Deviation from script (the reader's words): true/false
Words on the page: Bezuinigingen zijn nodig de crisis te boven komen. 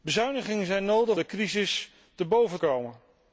false